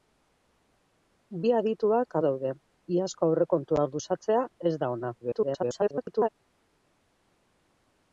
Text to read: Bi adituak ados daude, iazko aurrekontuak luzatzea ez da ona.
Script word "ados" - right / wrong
wrong